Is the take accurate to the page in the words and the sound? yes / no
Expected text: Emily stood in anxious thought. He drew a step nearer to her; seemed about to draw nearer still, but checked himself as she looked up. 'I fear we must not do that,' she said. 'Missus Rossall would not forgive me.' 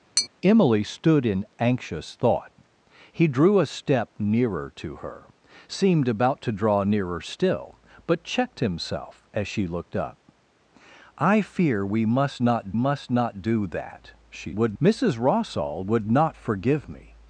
no